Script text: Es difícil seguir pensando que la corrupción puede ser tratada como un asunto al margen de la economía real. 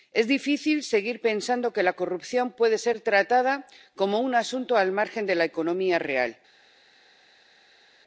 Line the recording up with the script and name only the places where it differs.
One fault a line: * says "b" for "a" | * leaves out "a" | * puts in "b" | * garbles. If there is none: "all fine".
all fine